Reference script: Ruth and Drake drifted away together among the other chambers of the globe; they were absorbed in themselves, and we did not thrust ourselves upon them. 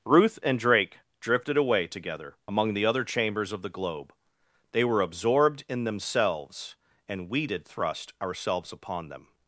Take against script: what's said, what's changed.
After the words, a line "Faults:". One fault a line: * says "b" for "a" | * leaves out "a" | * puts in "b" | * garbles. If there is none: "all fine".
Ruth and Drake drifted away together among the other chambers of the globe; they were absorbed in themselves, and we did thrust ourselves upon them.
Faults:
* leaves out "not"